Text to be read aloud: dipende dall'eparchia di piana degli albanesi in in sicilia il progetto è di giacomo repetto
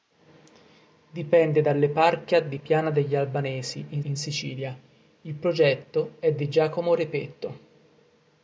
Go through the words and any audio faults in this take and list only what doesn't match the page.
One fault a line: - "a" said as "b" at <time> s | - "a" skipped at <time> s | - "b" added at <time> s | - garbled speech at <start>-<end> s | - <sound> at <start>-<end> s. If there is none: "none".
none